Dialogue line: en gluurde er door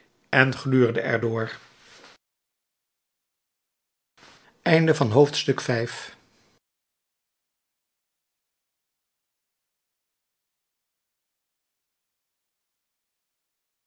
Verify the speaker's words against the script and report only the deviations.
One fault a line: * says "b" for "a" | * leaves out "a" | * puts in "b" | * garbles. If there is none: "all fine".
all fine